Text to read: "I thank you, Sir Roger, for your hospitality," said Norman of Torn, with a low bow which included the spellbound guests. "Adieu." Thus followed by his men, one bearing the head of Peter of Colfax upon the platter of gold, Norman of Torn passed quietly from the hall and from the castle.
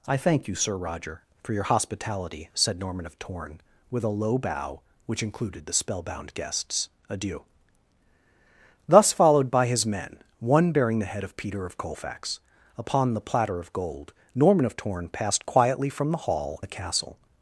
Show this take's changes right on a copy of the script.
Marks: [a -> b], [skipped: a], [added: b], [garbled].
"I thank you, Sir Roger, for your hospitality," said Norman of Torn, with a low bow which included the spellbound guests. "Adieu." Thus followed by his men, one bearing the head of Peter of Colfax upon the platter of gold, Norman of Torn passed quietly from the hall [skipped: and from] the castle.